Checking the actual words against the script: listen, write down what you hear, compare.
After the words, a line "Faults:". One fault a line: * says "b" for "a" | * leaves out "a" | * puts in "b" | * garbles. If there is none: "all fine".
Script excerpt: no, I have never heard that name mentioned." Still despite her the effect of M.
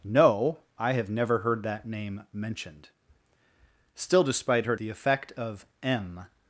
no, I have never heard that name mentioned." Still despite her the effect of M.
Faults:
all fine